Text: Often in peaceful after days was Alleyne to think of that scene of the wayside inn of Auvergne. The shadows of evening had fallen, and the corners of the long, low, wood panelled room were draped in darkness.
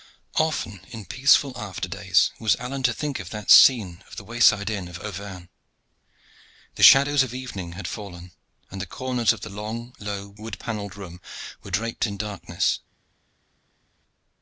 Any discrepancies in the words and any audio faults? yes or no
no